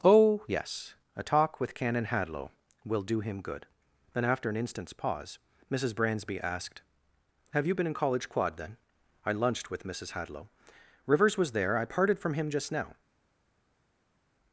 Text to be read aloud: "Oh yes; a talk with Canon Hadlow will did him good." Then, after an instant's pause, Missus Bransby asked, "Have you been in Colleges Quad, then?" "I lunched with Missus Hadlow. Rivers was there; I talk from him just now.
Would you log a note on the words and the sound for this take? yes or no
yes